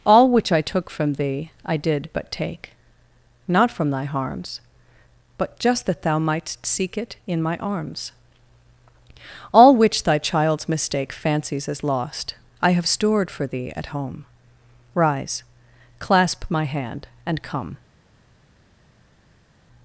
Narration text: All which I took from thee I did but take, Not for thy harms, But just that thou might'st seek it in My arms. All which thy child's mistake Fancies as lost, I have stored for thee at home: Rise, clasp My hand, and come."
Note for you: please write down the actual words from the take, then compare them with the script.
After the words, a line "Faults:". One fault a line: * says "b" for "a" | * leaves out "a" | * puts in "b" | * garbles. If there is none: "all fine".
All which I took from thee I did but take, Not from thy harms, But just that thou might'st seek it in My arms. All which thy child's mistake Fancies as lost, I have stored for thee at home: Rise, clasp My hand, and come."
Faults:
* says "from" for "for"